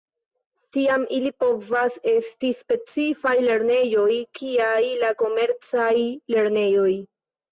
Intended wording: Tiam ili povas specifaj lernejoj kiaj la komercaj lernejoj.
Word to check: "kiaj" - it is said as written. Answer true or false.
true